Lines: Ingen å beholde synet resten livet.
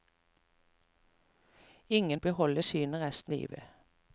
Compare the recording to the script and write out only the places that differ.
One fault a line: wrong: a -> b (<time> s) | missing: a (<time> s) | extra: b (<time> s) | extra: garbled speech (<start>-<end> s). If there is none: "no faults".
no faults